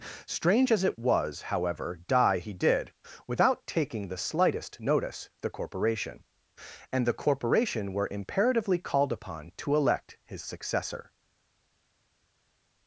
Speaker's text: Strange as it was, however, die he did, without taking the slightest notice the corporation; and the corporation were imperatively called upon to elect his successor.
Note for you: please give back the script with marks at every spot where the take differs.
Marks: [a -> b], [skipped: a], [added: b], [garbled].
Strange as it was, however, die he did, without taking the slightest notice the corporation; and the corporation were imperatively called upon to elect his successor.